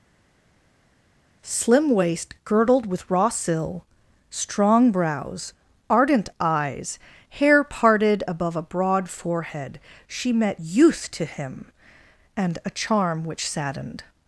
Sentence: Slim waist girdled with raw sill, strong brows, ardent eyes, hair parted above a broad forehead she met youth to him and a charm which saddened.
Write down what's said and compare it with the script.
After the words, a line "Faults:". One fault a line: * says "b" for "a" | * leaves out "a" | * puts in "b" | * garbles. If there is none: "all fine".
Slim waist girdled with raw sill, strong brows, ardent eyes, hair parted above a broad forehead she met youth to him and a charm which saddened.
Faults:
all fine